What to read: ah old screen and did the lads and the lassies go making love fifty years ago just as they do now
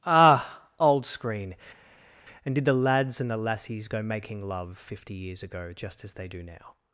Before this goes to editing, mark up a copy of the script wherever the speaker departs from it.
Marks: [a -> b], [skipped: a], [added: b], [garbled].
ah old screen and did the lads and the lassies go making love fifty years ago just as they do now